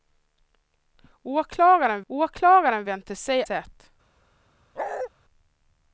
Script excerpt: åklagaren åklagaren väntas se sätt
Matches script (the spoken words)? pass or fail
pass